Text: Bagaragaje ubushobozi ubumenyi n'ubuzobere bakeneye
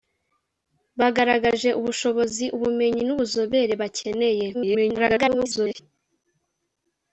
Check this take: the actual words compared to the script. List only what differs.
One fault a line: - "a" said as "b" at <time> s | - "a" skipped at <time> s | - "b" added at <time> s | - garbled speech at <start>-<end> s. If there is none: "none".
- garbled speech at 4.5-5.8 s